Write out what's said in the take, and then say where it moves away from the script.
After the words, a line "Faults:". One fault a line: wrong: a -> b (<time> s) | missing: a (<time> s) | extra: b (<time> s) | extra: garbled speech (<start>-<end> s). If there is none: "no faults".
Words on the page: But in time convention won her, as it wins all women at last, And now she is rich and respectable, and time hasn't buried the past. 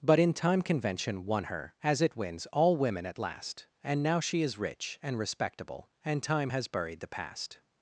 But in time convention won her, as it wins all women at last, And now she is rich and respectable, and time has buried the past.
Faults:
wrong: hasn't -> has (6.5 s)